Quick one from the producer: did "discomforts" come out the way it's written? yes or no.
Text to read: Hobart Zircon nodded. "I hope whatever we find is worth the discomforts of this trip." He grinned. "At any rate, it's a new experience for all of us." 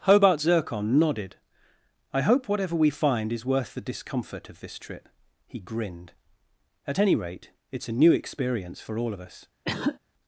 no